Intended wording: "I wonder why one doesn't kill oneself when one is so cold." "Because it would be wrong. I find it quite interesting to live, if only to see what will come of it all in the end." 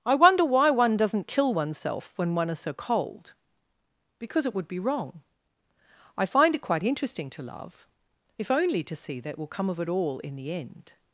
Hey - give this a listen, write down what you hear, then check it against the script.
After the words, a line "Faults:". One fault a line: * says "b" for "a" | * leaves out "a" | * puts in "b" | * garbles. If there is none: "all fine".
"I wonder why one doesn't kill oneself when one is so cold." "Because it would be wrong. I find it quite interesting to love, if only to see that will come of it all in the end."
Faults:
* says "love" for "live"
* says "that" for "what"